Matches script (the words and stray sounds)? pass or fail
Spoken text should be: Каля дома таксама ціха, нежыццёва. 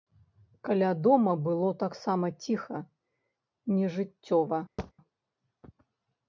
fail